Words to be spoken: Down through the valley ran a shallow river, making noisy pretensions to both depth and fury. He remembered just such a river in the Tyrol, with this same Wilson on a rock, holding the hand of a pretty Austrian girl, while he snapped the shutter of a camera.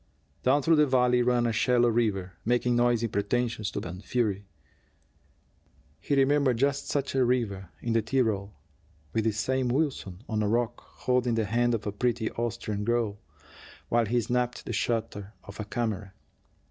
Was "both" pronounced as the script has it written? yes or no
no